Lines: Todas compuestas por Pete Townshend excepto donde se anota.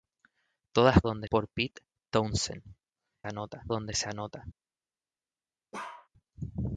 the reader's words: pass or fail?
fail